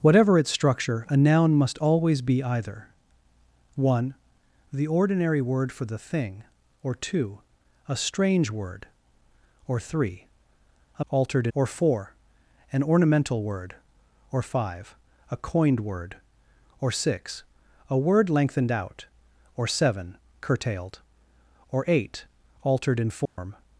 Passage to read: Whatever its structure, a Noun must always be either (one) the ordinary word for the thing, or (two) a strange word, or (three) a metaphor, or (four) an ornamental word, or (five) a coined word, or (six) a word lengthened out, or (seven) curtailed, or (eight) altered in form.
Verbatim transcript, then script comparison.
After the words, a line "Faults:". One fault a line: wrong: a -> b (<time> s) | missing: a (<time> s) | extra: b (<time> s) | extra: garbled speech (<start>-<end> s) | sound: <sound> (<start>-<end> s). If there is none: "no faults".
Whatever its structure, a Noun must always be either (one) the ordinary word for the thing, or (two) a strange word, or (three) a altered, or (four) an ornamental word, or (five) a coined word, or (six) a word lengthened out, or (seven) curtailed, or (eight) altered in form.
Faults:
wrong: metaphor -> altered (11.1 s)
sound: dropout (23.3-23.4 s)